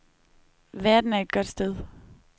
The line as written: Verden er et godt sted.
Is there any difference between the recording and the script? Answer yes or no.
no